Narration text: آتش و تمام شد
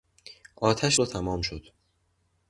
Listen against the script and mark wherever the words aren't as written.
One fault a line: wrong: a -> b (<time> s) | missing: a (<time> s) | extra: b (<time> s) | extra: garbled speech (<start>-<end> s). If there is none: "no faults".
no faults